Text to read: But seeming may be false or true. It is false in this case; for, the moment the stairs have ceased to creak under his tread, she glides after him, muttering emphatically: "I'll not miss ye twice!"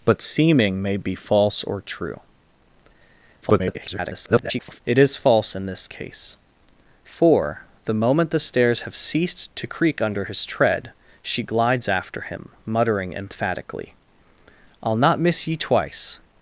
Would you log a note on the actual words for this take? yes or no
yes